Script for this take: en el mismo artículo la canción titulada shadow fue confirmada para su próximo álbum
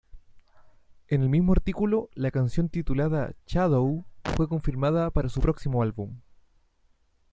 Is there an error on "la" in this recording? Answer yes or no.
no